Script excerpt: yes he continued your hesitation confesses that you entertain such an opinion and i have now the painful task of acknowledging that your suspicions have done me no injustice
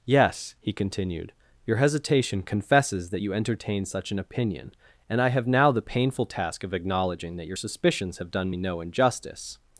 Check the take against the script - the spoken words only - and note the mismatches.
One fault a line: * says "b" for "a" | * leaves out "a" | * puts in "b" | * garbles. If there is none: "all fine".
all fine